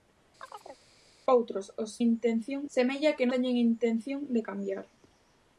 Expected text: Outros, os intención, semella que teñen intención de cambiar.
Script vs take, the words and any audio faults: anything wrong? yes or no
yes